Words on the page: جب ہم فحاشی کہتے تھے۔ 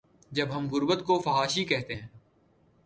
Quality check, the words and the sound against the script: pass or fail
fail